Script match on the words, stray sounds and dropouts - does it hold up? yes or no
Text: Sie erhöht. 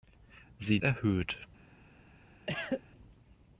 no